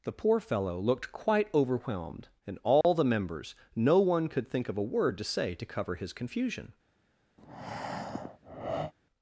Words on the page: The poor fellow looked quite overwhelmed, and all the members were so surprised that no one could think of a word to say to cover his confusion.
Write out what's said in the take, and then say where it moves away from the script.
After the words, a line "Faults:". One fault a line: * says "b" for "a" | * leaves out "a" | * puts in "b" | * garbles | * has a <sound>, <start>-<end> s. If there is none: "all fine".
The poor fellow looked quite overwhelmed, and all the members no one could think of a word to say to cover his confusion.
Faults:
* has a dropout, 2.8-2.8 s
* leaves out "were so surprised that"
* has a breath, 7.4-8.9 s